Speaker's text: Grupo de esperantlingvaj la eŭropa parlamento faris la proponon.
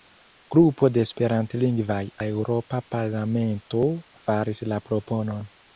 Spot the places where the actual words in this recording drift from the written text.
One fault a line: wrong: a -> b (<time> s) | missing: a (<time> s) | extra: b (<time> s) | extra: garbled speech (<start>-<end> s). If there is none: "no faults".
no faults